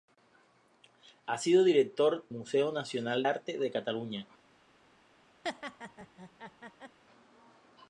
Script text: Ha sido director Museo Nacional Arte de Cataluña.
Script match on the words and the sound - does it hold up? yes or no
no